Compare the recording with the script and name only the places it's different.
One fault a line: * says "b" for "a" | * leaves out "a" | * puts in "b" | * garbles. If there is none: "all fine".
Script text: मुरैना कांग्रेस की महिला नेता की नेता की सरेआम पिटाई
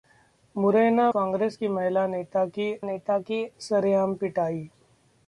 all fine